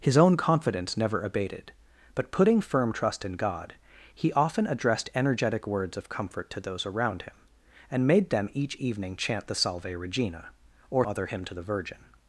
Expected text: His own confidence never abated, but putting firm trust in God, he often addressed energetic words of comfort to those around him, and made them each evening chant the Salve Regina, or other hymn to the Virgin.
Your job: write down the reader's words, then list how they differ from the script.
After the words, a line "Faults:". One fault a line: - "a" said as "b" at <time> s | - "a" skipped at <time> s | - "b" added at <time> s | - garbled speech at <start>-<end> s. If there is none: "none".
His own confidence never abated, but putting firm trust in God, he often addressed energetic words of comfort to those around him, and made them each evening chant the Salve Regina, or other hymn to the Virgin.
Faults:
none